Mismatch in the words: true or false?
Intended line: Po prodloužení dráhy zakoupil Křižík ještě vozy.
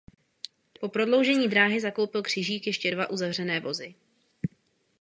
true